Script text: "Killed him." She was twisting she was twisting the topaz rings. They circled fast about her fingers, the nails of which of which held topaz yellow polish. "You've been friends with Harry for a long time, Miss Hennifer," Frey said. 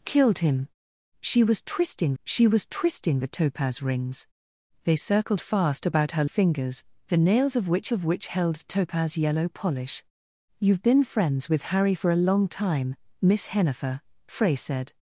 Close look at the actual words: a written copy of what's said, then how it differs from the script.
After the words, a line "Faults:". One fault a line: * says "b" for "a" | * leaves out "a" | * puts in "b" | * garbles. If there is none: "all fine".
"Killed him." She was twisting she was twisting the topaz rings. They circled fast about her fingers, the nails of which of which held topaz yellow polish. "You've been friends with Harry for a long time, Miss Hennifer," Frey said.
Faults:
all fine